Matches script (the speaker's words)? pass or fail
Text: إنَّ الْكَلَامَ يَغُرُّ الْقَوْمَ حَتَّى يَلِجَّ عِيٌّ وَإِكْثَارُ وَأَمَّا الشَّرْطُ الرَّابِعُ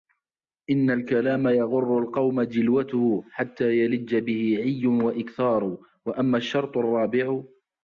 fail